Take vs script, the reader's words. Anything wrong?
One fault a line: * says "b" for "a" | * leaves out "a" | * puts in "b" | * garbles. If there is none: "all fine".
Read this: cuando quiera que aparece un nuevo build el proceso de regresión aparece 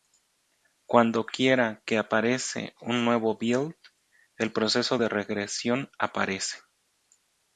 all fine